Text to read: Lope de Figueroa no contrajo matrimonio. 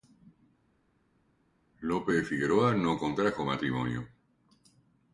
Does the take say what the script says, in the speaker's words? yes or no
yes